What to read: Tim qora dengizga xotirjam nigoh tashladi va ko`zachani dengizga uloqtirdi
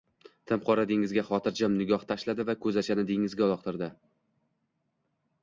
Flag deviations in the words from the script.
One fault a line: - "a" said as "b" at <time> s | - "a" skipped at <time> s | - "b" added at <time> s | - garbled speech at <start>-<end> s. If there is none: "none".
none